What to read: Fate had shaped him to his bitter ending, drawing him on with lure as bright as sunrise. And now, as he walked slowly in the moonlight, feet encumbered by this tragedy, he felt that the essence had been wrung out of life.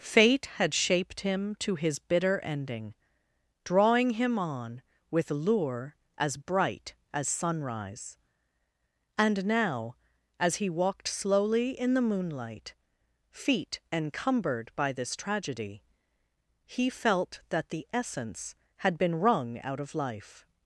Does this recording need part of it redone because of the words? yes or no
no